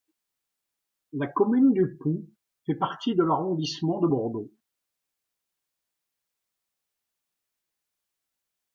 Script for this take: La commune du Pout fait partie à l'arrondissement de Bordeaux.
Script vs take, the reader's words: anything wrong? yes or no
yes